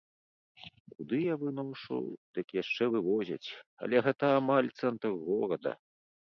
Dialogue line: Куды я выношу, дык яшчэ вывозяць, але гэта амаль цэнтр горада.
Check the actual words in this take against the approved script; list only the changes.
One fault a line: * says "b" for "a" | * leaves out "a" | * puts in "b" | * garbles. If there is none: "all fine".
all fine